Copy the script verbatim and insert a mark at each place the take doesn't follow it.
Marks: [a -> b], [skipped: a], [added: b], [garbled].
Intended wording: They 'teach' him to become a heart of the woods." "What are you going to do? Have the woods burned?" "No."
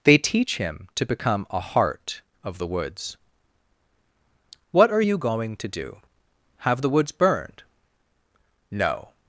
They 'teach' him to become a heart of the woods." "What are you going to do? Have the woods burned?" "No."